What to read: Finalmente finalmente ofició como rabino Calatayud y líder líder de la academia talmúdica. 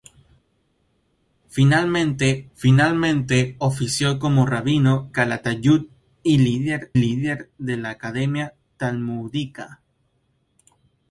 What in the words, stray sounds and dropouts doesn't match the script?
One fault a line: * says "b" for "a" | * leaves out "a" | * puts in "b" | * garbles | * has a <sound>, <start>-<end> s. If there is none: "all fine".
all fine